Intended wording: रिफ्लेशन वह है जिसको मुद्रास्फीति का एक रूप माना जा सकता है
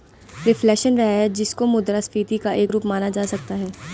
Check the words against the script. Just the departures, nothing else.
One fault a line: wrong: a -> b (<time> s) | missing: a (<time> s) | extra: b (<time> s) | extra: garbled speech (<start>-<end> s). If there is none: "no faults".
no faults